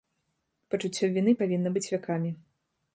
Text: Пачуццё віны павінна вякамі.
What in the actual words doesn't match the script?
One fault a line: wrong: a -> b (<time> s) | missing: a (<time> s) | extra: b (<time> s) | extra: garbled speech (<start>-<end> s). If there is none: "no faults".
extra: быць (1.8 s)